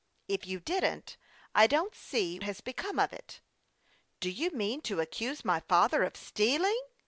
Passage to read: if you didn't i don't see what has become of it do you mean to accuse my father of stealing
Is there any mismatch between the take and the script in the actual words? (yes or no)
yes